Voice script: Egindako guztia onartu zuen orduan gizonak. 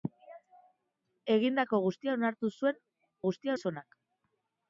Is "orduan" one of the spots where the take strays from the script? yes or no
yes